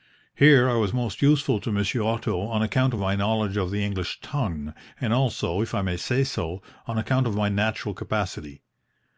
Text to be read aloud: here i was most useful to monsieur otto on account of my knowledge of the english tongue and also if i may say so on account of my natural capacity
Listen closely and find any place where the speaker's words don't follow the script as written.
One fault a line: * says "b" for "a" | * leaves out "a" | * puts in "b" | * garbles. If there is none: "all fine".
all fine